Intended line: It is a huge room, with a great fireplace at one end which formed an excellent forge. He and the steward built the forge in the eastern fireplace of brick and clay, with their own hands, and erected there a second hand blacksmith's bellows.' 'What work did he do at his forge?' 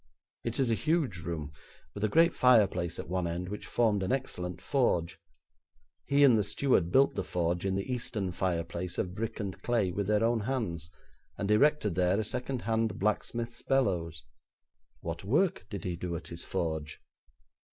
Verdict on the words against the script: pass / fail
pass